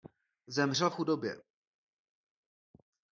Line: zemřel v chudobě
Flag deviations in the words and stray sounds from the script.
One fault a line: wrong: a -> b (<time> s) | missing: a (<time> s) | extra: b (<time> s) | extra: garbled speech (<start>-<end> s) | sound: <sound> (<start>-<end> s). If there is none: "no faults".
no faults